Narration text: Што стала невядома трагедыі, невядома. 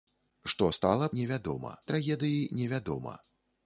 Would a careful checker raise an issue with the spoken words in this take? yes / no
no